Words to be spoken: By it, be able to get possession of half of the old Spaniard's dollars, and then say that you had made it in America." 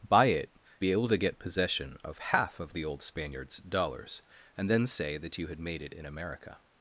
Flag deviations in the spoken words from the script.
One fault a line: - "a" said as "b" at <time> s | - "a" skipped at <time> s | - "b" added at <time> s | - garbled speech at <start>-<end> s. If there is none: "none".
none